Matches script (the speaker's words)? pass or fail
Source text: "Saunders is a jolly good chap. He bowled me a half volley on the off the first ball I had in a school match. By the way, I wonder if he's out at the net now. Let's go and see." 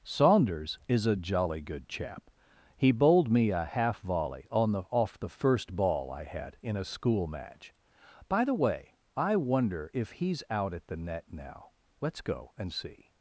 pass